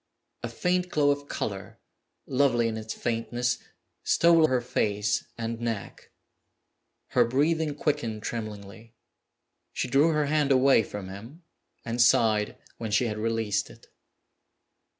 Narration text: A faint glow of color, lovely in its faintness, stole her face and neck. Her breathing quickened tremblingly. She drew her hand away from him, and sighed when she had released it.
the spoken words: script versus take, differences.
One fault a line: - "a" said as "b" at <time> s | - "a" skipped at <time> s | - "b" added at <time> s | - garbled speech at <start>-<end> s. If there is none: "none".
none